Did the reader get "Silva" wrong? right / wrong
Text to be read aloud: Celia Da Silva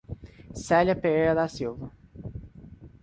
right